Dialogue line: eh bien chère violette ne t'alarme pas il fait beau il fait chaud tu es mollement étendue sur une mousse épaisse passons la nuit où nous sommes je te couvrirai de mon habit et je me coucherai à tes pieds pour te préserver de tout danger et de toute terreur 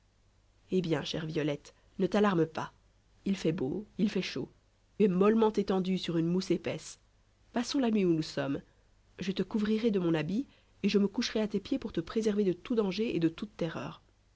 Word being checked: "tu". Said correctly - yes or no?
no